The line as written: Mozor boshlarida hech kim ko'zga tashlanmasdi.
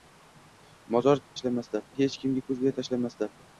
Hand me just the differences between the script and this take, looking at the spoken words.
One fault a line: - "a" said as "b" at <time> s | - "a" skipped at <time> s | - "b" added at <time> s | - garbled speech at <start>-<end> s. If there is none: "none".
- "boshlarida" said as "tashlanmasdi" at 1.4 s